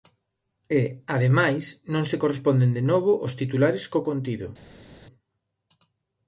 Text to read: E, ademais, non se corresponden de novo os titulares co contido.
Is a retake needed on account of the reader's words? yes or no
no